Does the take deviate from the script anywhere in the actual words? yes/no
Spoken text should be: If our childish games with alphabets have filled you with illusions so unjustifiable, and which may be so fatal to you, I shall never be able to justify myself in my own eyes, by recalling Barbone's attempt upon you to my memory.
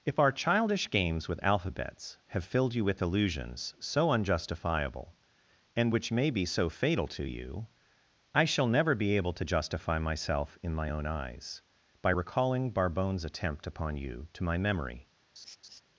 no